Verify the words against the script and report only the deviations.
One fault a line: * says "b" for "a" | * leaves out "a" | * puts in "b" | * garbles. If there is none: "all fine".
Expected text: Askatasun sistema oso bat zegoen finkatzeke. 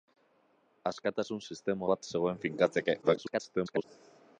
* leaves out "oso"
* garbles